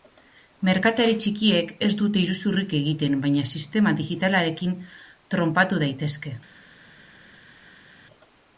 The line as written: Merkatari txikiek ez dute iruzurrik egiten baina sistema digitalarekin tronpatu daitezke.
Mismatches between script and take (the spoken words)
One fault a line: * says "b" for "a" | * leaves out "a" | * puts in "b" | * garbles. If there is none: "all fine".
all fine